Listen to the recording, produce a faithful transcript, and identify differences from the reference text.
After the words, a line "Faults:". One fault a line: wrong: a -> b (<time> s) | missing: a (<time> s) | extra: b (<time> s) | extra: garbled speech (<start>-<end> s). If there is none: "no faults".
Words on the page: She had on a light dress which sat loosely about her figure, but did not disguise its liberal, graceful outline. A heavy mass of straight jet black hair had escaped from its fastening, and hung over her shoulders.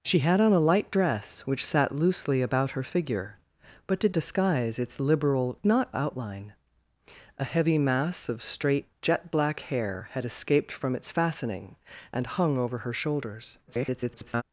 She had on a light dress which sat loosely about her figure, but did disguise its liberal, not outline. A heavy mass of straight jet black hair had escaped from its fastening, and hung over her shoulders. [garbled]
Faults:
missing: not (4.2 s)
wrong: graceful -> not (5.7 s)
extra: garbled speech (13.7-14.4 s)